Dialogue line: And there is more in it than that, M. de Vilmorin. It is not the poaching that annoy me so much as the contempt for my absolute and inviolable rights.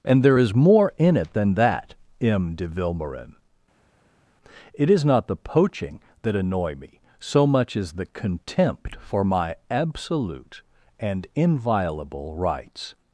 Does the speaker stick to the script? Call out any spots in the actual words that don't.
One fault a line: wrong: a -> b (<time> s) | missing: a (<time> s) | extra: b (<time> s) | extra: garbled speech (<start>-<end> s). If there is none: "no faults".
no faults